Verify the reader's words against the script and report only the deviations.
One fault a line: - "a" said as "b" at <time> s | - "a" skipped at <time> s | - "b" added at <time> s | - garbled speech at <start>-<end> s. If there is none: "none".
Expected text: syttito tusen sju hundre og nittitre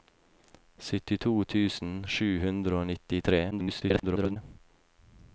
- garbled speech at 3.5-4.4 s